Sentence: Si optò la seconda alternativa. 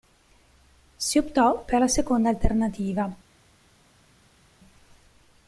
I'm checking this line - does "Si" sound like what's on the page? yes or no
yes